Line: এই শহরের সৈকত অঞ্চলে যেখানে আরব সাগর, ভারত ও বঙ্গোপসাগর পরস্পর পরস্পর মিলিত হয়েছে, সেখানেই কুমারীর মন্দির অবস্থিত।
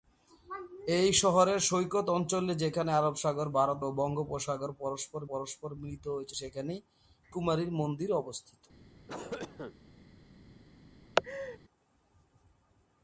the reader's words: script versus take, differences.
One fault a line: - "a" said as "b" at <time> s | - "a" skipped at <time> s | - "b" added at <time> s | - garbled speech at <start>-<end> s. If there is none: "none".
none